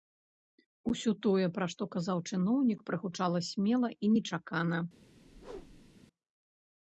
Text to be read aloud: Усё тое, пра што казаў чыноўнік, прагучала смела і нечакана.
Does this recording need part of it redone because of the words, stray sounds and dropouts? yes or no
yes